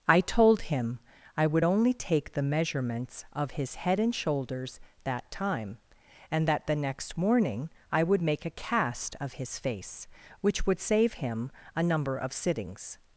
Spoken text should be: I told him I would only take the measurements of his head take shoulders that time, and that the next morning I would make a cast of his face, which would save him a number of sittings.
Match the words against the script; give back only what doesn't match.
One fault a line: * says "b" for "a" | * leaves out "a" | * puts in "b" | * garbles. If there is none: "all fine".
* says "and" for "take"